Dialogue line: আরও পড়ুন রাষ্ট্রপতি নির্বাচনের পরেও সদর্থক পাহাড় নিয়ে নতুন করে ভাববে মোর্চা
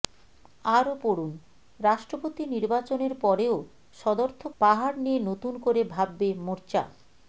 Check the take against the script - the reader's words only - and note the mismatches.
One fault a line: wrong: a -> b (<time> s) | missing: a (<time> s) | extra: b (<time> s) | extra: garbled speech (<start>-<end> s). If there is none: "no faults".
no faults